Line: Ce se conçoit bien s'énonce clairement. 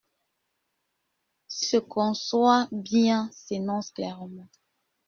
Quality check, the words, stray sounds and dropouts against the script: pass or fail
pass